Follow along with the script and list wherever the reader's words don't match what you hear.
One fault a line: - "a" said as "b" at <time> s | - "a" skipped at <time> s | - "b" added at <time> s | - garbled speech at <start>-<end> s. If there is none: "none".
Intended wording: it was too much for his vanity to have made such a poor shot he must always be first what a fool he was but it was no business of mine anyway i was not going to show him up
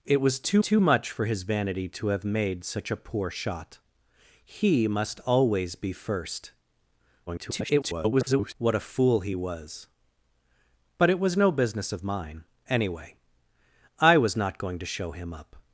- "too" added at 0.6 s
- garbled speech at 7.3-8.5 s